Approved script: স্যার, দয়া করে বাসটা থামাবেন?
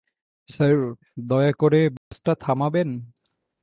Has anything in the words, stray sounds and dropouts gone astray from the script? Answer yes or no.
yes